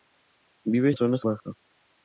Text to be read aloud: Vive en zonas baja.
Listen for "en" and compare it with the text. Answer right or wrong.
right